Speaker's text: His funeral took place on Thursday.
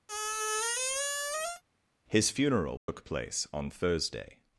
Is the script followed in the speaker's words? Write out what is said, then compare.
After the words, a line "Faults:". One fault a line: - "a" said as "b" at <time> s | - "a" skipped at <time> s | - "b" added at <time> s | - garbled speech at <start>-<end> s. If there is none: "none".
His funeral took place on Thursday.
Faults:
none